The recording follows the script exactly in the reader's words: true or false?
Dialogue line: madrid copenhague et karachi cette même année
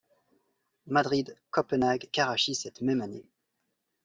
false